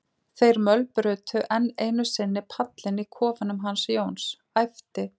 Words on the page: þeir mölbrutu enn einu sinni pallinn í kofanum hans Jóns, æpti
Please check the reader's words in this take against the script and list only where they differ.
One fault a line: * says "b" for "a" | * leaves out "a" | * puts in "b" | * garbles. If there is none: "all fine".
all fine